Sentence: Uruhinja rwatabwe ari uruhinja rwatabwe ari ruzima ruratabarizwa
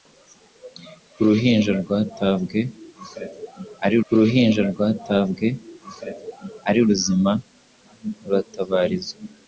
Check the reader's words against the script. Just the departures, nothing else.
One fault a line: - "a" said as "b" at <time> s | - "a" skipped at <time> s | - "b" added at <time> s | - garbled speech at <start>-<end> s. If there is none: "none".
none